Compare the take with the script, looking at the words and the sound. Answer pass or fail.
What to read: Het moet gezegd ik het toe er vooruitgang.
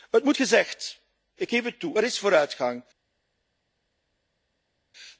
fail